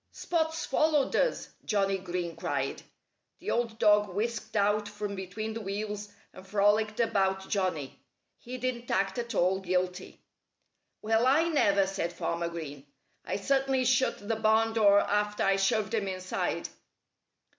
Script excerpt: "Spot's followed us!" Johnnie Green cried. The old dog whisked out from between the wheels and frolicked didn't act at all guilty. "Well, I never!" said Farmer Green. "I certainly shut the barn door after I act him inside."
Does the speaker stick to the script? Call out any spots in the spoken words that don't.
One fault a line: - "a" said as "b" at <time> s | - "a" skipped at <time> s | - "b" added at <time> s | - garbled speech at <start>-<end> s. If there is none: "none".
- "about Johnnie He" added at 7.0 s
- "act" said as "shoved" at 15.6 s